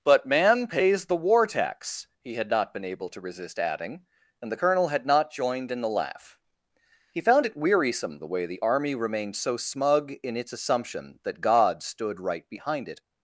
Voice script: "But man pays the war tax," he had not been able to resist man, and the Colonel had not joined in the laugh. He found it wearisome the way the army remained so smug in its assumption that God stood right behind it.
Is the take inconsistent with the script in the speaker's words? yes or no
yes